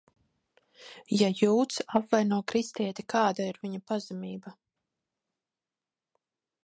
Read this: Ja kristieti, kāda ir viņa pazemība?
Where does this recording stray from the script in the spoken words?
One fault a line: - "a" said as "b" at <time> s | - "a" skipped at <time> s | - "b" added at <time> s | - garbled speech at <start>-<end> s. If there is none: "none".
- "jūds apvaino" added at 1.4 s